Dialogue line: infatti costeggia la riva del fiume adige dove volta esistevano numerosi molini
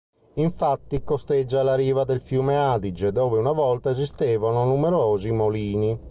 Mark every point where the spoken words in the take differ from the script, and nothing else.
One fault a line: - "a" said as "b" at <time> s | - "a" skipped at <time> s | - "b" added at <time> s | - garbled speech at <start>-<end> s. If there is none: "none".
- "una" added at 3.4 s